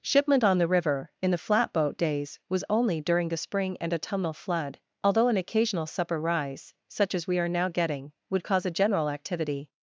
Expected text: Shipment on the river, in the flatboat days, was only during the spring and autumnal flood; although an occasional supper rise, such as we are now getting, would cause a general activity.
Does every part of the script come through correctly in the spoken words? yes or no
yes